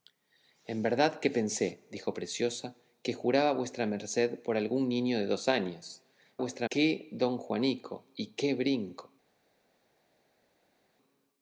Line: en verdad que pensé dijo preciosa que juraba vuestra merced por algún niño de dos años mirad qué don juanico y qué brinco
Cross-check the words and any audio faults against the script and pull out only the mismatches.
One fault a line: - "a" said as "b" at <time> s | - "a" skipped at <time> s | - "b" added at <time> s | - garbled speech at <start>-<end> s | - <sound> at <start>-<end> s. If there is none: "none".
- "mirad" said as "vuestra" at 6.4 s